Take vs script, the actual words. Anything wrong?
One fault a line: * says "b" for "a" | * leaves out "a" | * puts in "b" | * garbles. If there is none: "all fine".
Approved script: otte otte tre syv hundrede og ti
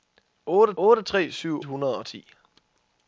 all fine